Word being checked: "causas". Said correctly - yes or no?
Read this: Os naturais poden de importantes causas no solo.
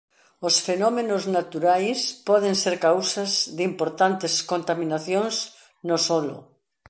no